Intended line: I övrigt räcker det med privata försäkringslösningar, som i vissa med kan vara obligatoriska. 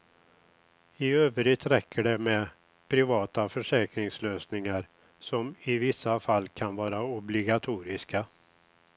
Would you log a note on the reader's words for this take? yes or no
yes